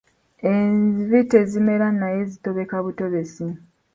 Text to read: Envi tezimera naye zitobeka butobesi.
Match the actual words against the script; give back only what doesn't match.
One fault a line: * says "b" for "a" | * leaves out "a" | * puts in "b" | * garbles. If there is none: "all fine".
all fine